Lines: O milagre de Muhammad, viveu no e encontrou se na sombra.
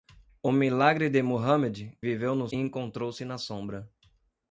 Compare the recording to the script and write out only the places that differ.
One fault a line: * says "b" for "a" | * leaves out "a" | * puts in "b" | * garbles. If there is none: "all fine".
all fine